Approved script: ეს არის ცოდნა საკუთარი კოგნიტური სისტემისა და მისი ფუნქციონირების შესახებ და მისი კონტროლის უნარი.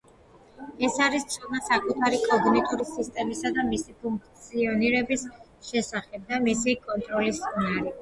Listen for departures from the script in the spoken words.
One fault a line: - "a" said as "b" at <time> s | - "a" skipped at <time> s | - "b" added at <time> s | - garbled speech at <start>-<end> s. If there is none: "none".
none